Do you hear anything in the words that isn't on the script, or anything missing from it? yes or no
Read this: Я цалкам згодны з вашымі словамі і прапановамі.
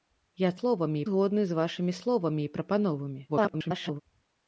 yes